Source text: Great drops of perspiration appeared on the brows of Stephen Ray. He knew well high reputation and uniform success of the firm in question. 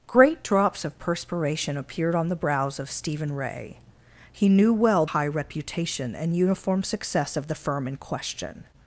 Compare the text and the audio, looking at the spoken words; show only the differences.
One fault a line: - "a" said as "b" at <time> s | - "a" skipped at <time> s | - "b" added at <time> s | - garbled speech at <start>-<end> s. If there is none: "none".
none